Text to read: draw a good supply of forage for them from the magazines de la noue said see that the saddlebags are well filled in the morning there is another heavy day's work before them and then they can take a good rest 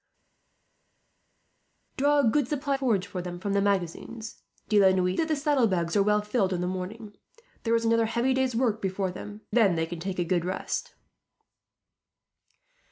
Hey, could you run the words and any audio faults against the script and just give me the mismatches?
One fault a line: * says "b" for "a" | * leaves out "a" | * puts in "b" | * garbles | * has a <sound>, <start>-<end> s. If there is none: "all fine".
* leaves out "of"
* leaves out "said see"
* leaves out "and"